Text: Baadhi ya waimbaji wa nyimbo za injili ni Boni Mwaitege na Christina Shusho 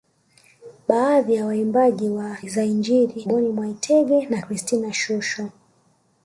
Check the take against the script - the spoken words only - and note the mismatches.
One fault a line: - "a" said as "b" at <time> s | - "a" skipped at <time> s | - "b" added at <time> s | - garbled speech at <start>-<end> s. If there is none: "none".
- "nyimbo" skipped at 2.4 s
- "ni" skipped at 3.3 s